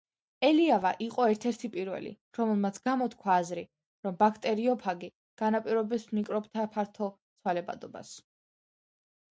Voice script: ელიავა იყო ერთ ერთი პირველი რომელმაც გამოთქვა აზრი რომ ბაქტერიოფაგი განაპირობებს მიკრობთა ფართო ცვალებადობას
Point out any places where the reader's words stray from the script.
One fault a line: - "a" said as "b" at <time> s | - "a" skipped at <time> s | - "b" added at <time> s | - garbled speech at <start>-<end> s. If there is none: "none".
none